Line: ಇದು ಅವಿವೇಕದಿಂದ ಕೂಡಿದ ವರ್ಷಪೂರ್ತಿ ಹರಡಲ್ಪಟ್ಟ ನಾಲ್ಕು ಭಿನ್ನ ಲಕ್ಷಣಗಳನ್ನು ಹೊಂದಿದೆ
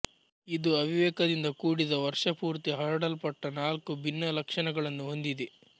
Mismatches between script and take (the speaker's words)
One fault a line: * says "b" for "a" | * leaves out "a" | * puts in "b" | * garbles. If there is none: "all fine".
all fine